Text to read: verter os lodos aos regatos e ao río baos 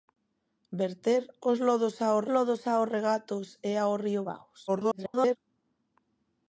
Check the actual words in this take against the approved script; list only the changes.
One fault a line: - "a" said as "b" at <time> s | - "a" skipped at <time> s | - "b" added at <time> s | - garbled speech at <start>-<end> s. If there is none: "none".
- "lodos aos" added at 2.3 s
- garbled speech at 4.7-5.4 s